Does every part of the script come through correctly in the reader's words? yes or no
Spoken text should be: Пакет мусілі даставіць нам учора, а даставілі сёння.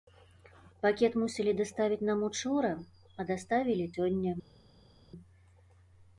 yes